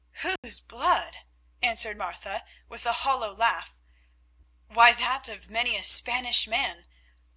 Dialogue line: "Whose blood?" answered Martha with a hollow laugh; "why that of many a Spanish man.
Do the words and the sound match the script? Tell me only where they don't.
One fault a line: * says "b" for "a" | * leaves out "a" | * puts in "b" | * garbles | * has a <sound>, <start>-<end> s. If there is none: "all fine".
* has a dropout, 0.4-0.4 s